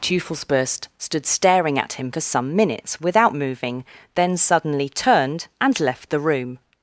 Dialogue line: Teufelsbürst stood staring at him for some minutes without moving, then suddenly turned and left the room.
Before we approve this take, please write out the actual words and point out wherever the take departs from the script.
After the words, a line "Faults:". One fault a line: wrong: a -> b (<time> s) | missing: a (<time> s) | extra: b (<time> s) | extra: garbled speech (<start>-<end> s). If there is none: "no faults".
Teufelsbürst stood staring at him for some minutes without moving, then suddenly turned and left the room.
Faults:
no faults